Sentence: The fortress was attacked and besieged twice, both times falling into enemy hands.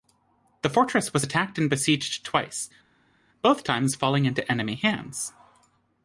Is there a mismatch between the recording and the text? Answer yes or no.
no